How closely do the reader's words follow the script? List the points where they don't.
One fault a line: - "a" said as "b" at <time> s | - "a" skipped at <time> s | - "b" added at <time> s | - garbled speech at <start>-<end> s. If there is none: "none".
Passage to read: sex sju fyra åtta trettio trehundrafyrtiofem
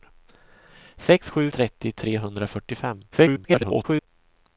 - "fyra åtta" skipped at 1.5 s
- garbled speech at 3.1-4.1 s